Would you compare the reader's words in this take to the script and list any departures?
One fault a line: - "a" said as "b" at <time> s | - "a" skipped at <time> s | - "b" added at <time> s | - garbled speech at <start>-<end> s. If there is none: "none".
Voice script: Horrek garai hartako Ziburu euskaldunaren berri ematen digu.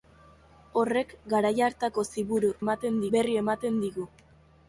- "euskaldunaren" said as "ematen" at 2.7 s